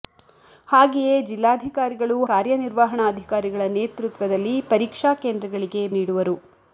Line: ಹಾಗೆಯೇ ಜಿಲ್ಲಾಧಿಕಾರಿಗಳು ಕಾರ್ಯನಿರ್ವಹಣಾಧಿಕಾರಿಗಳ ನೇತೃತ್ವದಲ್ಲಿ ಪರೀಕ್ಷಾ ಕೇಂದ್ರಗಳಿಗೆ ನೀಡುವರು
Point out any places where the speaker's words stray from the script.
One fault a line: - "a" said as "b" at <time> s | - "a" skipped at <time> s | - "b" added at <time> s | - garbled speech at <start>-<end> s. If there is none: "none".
none